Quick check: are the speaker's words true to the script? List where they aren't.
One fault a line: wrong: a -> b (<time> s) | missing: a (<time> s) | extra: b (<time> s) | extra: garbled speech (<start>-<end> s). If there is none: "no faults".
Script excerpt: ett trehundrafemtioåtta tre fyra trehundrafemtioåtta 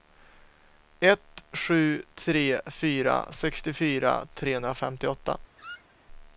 wrong: trehundrafemtioåtta -> sju (1.5 s)
extra: sextiofyra (3.3 s)